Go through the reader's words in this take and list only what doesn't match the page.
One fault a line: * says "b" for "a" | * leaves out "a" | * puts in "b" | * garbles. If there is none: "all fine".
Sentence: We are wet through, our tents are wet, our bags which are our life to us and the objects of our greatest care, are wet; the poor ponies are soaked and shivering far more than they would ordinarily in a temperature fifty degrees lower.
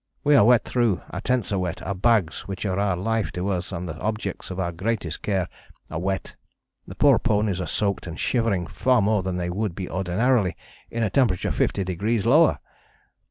* puts in "be"